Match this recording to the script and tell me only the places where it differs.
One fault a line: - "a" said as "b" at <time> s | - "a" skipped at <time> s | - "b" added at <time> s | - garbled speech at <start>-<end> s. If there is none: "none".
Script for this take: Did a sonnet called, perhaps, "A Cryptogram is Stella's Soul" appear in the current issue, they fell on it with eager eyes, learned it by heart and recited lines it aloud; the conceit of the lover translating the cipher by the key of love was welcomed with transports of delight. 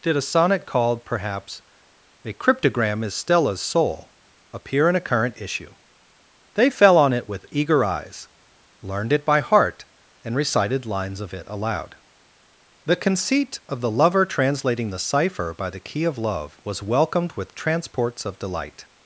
- "the" said as "a" at 5.0 s
- "of" added at 11.2 s